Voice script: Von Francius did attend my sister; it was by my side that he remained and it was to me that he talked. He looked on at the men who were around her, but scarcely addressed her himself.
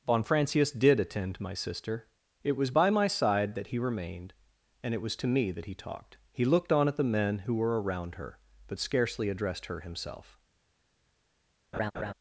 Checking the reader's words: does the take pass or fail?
pass